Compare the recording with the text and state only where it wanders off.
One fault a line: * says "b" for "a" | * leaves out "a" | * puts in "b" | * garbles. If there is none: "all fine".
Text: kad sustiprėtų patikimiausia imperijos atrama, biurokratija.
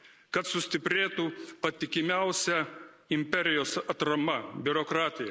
all fine